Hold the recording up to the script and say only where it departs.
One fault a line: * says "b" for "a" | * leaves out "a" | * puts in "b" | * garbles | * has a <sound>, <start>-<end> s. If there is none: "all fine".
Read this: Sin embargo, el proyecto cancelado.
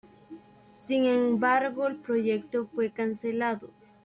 * puts in "fue"